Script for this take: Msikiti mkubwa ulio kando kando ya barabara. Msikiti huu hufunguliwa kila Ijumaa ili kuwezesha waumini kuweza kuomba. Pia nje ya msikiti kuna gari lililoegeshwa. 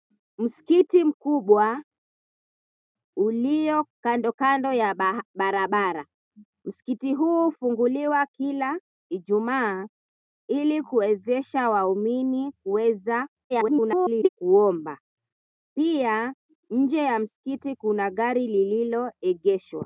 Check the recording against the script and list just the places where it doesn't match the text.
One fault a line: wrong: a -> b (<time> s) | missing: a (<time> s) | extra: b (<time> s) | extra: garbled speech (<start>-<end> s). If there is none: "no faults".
extra: garbled speech (13.5-14.3 s)